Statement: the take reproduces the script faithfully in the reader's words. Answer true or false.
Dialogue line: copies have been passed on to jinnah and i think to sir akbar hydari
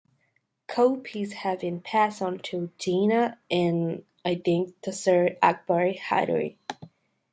true